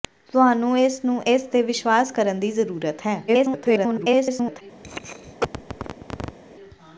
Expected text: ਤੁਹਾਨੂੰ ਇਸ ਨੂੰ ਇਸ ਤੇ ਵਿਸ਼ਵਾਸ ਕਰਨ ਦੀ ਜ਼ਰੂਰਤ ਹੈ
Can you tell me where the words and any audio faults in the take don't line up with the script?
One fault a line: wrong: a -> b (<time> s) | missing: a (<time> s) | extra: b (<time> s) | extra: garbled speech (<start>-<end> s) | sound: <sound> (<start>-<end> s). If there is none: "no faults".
extra: garbled speech (3.3-4.6 s)
sound: cough (4.8-6.4 s)